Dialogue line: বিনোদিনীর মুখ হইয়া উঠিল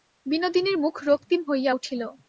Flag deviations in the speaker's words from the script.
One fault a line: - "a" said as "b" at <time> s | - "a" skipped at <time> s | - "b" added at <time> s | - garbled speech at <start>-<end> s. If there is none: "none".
- "রক্তিম" added at 1.1 s